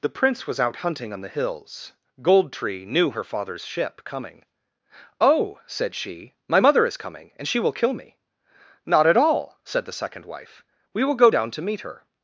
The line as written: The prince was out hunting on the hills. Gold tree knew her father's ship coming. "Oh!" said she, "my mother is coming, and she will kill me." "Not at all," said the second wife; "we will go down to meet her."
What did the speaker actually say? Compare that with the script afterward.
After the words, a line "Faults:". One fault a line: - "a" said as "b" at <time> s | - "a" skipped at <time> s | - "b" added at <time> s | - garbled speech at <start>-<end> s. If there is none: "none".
The prince was out hunting on the hills. Gold tree knew her father's ship coming. "Oh!" said she, "my mother is coming, and she will kill me." "Not at all," said the second wife; "we will go down to meet her."
Faults:
none